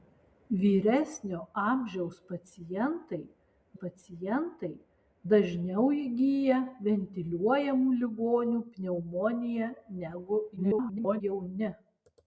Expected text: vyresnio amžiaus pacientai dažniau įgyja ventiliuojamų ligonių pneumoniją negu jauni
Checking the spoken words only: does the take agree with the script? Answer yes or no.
no